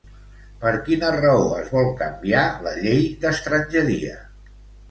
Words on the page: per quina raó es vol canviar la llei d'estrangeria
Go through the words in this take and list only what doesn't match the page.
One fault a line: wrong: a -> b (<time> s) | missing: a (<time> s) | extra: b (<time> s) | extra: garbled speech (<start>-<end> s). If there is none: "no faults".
no faults